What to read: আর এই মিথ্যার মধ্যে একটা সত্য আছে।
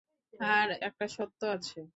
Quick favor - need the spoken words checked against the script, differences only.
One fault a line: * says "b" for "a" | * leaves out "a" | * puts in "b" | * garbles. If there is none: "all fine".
* leaves out "এই মিথ্যার মধ্যে"